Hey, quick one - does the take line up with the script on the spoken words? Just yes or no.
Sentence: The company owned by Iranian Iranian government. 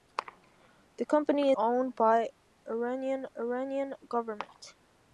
yes